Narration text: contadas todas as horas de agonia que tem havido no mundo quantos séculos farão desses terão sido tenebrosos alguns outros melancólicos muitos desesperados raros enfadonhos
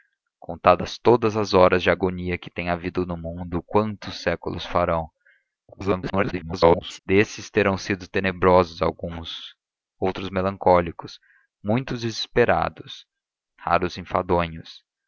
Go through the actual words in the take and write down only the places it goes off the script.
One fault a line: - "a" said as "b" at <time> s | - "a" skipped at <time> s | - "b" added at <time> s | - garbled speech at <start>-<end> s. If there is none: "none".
- garbled speech at 5.7-7.0 s